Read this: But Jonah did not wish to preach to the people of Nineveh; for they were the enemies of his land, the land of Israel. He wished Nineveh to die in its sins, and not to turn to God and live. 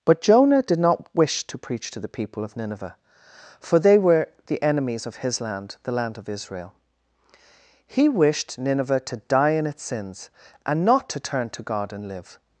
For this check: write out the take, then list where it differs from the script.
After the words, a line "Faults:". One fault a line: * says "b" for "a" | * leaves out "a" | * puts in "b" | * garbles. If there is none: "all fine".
But Jonah did not wish to preach to the people of Nineveh; for they were the enemies of his land, the land of Israel. He wished Nineveh to die in its sins, and not to turn to God and live.
Faults:
all fine